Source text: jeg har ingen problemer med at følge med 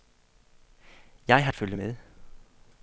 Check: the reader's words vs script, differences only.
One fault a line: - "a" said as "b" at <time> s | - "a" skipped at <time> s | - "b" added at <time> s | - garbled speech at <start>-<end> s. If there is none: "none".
- "ingen problemer med" skipped at 1.5 s